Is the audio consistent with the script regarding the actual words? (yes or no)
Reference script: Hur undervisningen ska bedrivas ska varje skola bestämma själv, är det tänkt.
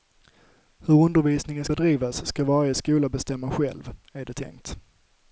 no